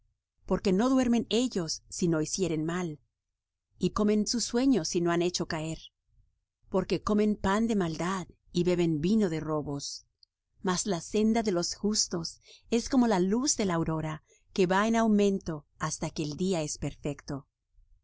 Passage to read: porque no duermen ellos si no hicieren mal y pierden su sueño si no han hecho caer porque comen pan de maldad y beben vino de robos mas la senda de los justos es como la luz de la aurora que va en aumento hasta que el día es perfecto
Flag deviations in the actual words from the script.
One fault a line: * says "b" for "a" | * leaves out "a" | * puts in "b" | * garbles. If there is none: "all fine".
* says "comen" for "pierden"